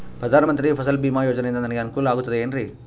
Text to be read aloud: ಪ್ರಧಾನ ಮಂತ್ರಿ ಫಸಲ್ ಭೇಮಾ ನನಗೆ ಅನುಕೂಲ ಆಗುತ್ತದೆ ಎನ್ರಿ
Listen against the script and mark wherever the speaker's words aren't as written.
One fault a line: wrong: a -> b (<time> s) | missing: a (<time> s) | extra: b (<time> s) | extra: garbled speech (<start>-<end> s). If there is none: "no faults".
extra: ಯೋಜನೆಯಿಂದ (1.2 s)